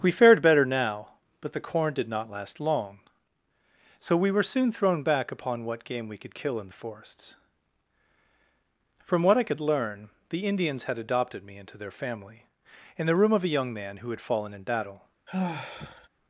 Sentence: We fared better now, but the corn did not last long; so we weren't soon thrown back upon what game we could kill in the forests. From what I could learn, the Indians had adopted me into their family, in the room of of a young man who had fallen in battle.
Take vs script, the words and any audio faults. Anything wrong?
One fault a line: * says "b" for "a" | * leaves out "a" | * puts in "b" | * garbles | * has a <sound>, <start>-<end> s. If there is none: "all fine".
* says "were" for "weren't"
* leaves out "of"
* has a sigh, 15.3-16.1 s